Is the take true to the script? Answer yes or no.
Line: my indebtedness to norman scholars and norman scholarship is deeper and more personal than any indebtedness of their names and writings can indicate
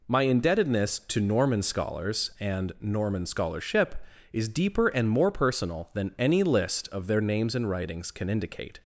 no